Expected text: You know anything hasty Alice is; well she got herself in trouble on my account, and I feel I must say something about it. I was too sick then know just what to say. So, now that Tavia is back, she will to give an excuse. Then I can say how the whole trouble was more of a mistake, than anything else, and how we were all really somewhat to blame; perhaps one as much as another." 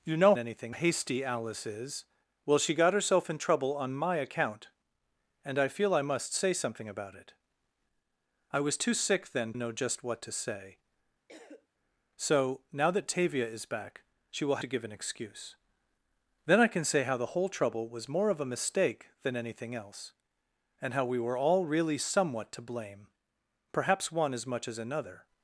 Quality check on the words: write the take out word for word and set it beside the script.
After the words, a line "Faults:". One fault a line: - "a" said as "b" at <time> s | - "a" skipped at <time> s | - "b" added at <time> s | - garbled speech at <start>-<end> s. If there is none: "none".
You know anything hasty Alice is; well she got herself in trouble on my account, and I feel I must say something about it. I was too sick then know just what to say. So, now that Tavia is back, she will to give an excuse. Then I can say how the whole trouble was more of a mistake, than anything else, and how we were all really somewhat to blame; perhaps one as much as another."
Faults:
none